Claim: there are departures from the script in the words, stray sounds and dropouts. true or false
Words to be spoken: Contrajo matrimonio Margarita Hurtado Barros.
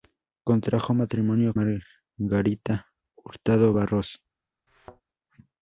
true